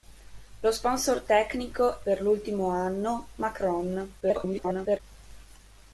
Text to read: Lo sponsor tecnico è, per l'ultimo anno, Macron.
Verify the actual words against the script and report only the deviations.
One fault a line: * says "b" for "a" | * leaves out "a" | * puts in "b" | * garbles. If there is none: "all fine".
* leaves out "è"
* garbles